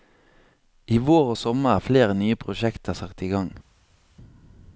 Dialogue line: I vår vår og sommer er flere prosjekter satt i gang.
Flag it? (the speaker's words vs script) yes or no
yes